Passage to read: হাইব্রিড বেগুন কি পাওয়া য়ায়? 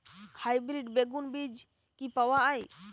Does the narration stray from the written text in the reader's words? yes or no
yes